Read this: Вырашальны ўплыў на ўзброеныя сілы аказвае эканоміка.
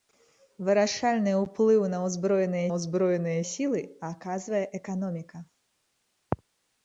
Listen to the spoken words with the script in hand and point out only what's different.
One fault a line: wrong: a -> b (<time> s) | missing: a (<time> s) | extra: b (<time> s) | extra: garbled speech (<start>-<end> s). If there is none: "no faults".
extra: ўзброеныя (2.7 s)